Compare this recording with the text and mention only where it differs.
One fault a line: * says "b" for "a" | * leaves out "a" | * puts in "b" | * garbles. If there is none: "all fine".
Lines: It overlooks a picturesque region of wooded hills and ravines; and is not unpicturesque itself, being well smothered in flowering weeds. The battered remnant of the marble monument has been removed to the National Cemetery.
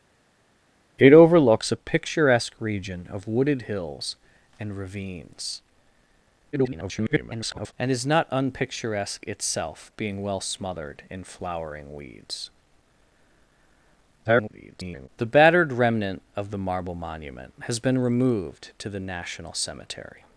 * garbles
* garbles